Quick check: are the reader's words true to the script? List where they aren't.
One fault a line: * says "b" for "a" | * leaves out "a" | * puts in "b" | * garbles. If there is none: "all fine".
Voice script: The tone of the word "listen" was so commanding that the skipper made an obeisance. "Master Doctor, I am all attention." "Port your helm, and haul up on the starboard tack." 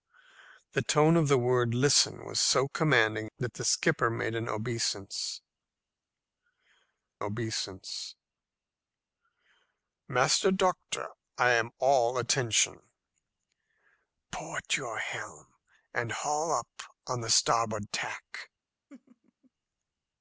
* puts in "obeisance"